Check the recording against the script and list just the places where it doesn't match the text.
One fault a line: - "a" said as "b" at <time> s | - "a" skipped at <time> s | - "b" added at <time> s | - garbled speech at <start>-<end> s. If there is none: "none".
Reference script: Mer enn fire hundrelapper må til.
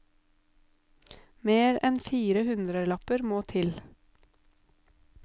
none